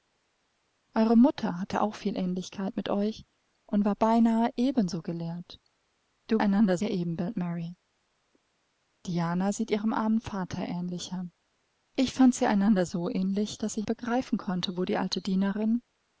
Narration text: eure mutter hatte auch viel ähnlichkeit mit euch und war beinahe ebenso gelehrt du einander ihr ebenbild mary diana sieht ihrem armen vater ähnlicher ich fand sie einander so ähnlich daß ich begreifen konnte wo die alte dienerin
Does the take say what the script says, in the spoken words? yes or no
yes